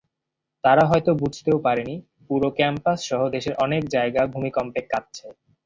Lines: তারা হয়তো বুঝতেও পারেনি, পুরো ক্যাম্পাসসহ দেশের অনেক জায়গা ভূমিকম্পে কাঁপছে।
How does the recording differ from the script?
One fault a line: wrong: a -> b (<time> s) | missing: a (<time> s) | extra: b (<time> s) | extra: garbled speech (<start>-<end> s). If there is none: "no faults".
no faults